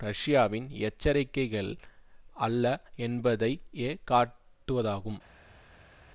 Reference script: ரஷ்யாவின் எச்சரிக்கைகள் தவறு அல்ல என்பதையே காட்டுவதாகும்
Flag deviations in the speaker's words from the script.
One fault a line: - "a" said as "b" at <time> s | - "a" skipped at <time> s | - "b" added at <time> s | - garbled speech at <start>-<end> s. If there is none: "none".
- "தவறு" skipped at 1.7 s